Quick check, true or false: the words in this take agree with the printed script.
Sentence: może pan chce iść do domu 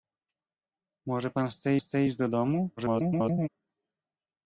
false